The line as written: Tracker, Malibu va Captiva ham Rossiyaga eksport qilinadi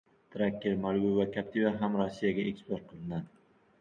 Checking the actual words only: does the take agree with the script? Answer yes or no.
yes